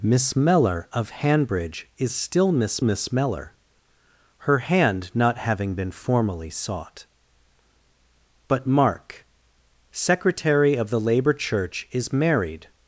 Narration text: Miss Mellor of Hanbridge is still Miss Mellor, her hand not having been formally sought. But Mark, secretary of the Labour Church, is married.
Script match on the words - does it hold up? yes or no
no